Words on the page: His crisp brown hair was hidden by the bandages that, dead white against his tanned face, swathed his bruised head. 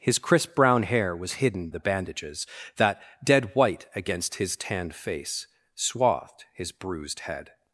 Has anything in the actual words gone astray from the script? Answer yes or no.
yes